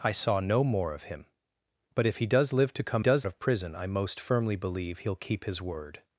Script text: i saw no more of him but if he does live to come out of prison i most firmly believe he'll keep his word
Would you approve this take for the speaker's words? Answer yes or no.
no